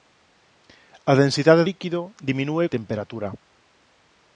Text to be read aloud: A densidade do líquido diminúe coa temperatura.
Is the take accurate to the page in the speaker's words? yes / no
no